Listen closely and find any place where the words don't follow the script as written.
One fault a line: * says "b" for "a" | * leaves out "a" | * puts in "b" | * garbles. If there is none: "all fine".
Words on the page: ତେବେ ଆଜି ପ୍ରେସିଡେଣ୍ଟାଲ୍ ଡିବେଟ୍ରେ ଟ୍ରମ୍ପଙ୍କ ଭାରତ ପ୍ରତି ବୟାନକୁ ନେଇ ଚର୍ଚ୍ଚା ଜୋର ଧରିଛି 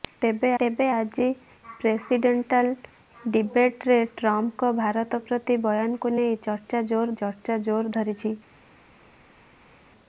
* puts in "ତେବେ"
* puts in "ଚର୍ଚ୍ଚା ଜୋର"